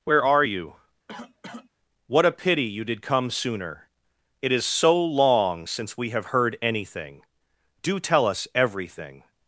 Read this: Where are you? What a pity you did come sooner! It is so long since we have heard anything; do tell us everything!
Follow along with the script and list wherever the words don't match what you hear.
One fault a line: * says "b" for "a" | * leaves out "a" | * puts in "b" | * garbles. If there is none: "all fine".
all fine